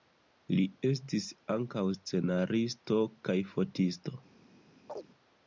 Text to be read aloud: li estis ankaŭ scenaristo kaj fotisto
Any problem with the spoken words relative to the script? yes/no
no